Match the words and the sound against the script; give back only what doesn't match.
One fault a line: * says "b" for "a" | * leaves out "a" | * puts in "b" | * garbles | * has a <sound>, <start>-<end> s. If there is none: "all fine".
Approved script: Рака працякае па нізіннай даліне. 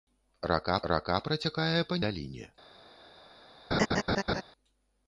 * puts in "рака"
* leaves out "нізіннай"
* has a laugh, 3.7-4.4 s